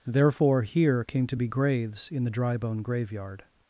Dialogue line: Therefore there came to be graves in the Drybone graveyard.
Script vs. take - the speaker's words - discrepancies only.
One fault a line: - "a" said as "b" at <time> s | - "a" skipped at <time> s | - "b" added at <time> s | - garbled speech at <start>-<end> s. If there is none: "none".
- "there" said as "here" at 0.6 s